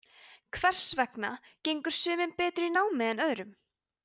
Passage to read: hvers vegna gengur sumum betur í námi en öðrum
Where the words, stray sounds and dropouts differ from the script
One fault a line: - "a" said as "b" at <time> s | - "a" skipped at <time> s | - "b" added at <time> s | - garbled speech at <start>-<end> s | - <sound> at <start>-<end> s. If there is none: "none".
none